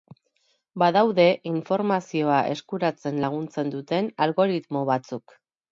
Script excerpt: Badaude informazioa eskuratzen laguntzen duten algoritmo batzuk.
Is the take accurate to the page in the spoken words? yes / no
yes